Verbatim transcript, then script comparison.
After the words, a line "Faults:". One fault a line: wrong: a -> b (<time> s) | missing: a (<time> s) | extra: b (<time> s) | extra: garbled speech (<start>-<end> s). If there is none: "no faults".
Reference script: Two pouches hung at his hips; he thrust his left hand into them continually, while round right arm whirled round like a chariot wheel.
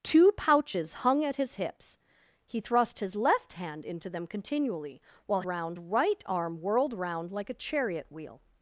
Two pouches hung at his hips; he thrust his left hand into them continually, while round right arm whirled round like a chariot wheel.
Faults:
no faults